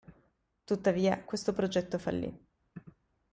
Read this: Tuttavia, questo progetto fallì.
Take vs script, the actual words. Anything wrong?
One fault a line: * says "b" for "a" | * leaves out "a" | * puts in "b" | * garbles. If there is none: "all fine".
all fine